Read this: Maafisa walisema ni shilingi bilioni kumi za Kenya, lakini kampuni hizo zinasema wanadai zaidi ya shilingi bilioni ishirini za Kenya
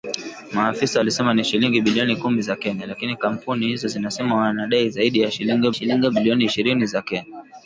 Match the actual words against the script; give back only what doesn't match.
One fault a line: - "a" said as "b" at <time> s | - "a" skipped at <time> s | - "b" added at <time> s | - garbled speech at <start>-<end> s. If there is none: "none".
- "shilingi" added at 5.7 s